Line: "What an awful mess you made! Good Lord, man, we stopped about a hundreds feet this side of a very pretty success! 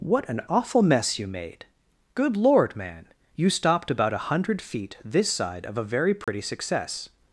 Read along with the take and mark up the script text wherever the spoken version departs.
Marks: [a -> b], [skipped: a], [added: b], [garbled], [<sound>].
"What an awful mess you made! Good Lord, man, [we -> you] stopped about a [hundreds -> hundred] feet this side of a very pretty [dropout] success!